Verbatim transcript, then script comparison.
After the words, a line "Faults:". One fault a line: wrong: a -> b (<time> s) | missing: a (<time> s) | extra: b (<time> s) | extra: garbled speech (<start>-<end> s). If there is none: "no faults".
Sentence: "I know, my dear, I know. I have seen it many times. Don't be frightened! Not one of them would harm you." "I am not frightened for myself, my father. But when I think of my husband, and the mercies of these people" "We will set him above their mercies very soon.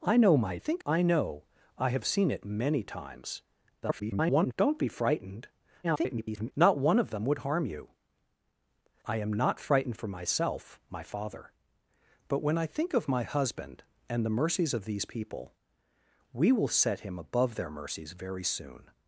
"I know, my think, I know. I have seen it many times. [garbled] Don't be frightened! [garbled] Not one of them would harm you." "I am not frightened for myself, my father. But when I think of my husband, and the mercies of these people" "We will set him above their mercies very soon.
Faults:
wrong: dear -> think (0.6 s)
extra: garbled speech (3.8-4.5 s)
extra: garbled speech (5.8-6.5 s)